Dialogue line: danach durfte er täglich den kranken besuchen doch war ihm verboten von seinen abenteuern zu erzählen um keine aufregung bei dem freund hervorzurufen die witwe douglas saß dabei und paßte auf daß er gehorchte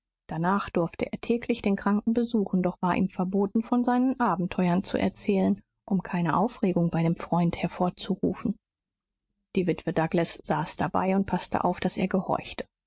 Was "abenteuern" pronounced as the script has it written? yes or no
yes